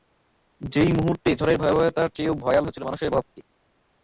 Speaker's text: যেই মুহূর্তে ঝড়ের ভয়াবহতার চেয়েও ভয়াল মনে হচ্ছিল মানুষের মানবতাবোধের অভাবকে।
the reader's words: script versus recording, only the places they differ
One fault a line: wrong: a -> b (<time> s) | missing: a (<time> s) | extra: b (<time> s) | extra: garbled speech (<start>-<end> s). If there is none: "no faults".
missing: মনে (2.6 s)
missing: মানবতাবোধের (3.1 s)